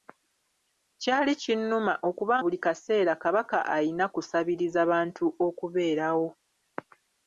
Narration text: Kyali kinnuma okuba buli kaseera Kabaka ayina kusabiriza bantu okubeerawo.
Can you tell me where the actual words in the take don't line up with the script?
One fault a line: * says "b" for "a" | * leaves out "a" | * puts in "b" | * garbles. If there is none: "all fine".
all fine